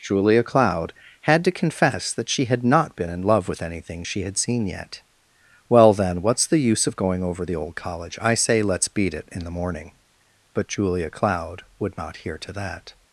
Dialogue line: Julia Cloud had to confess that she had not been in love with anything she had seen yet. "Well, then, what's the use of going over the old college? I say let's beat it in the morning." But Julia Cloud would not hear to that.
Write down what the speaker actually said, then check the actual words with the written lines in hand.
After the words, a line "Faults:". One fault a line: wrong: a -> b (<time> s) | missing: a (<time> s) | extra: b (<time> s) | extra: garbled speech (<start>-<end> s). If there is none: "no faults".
Julia Cloud had to confess that she had not been in love with anything she had seen yet. "Well, then, what's the use of going over the old college? I say let's beat it in the morning." But Julia Cloud would not hear to that.
Faults:
no faults